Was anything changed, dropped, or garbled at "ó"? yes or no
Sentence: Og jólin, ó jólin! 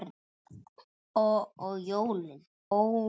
yes